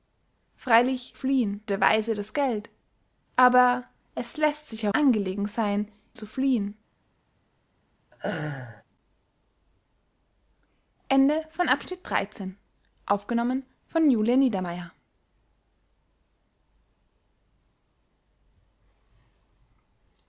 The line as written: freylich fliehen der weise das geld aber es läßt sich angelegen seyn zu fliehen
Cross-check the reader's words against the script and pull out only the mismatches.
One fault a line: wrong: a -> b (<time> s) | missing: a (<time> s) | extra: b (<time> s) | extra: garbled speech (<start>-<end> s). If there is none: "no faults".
no faults